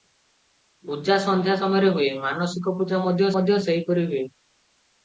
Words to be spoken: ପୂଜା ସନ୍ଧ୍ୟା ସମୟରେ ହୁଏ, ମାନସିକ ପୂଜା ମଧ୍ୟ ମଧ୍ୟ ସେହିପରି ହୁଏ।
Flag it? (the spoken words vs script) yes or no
no